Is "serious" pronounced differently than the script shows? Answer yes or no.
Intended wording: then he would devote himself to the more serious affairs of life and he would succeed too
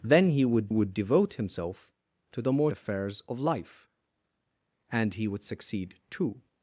yes